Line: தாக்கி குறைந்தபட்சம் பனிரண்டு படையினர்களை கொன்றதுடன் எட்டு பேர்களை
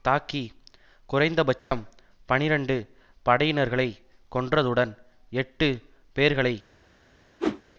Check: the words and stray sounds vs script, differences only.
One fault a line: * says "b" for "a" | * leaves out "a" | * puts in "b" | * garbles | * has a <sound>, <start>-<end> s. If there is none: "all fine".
* has a dropout, 1.6-1.7 s
* has a whoosh, 7.4-7.6 s